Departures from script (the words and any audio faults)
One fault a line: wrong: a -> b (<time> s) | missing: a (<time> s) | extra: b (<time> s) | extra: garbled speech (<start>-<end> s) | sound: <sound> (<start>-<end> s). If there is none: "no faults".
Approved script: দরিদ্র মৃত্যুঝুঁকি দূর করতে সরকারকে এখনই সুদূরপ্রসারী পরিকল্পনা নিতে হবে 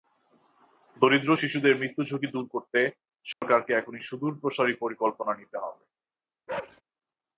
extra: শিশুদের (1.3 s)
sound: dropout (3.3-3.4 s)
sound: bark (6.5-6.8 s)